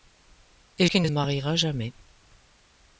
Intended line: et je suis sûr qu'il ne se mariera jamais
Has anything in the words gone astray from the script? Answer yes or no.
yes